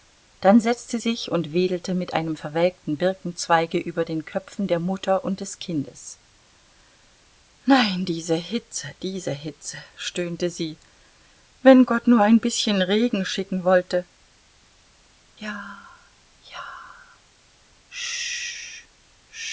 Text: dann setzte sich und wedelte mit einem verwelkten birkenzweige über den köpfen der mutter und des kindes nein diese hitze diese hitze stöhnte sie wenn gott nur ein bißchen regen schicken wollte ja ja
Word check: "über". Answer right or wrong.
right